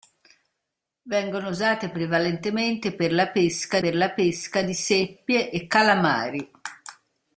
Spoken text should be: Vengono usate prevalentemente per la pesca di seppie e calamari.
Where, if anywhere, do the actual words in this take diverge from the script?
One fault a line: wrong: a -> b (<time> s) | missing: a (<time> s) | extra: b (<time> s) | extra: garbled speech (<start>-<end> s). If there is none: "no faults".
extra: per la pesca (3.8 s)